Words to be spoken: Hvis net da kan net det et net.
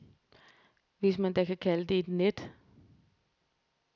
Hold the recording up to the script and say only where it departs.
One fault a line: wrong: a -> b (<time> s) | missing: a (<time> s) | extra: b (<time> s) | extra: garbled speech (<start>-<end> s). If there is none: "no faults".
wrong: net -> man (1.2 s)
wrong: net -> kalde (1.6 s)